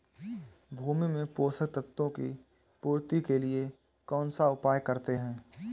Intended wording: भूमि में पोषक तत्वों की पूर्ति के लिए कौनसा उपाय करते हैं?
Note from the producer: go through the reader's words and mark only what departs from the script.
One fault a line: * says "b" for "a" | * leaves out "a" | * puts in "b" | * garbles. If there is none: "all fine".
all fine